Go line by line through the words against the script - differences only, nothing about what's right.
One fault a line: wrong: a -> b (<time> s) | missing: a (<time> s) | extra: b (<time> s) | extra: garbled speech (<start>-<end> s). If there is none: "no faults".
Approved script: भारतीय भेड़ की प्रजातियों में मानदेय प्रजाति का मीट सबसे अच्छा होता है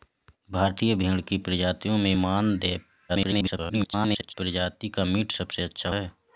extra: garbled speech (3.1-4.3 s)
missing: होता (5.9 s)